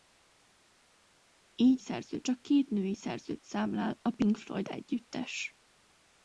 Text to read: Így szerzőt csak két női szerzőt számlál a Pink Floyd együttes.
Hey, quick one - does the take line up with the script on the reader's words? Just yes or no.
yes